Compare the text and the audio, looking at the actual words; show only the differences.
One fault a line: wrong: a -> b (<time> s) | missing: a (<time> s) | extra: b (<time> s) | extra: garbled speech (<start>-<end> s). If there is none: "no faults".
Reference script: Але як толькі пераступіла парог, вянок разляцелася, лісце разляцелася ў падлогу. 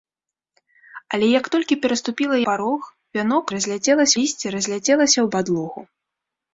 no faults